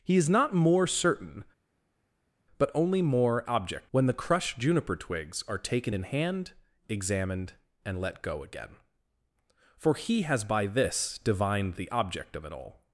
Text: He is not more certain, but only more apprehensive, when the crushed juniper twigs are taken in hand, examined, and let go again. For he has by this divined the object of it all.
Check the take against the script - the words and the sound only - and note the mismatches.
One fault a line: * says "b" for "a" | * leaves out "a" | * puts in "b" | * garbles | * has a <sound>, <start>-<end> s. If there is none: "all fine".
* says "object" for "apprehensive"